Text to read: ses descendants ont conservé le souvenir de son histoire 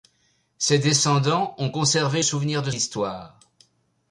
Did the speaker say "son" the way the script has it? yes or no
no